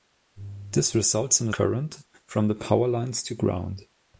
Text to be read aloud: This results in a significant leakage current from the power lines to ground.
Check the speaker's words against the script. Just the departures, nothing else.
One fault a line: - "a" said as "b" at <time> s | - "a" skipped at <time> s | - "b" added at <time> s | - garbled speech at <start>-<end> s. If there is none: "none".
- "significant leakage" skipped at 1.5 s